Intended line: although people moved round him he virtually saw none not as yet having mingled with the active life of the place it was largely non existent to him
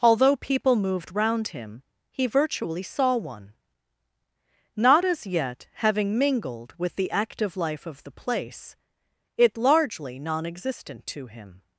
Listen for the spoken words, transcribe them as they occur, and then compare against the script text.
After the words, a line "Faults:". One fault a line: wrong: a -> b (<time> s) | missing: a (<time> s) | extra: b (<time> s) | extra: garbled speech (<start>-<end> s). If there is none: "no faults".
although people moved round him he virtually saw one not as yet having mingled with the active life of the place it largely non existent to him
Faults:
wrong: none -> one (3.1 s)
missing: was (9.6 s)